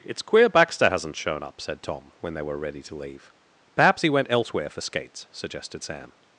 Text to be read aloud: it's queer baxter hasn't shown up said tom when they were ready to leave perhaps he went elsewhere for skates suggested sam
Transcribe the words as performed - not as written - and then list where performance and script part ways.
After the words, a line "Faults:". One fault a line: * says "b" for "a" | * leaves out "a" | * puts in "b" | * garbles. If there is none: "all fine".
it's queer baxter hasn't shown up said tom when they were ready to leave perhaps he went elsewhere for skates suggested sam
Faults:
all fine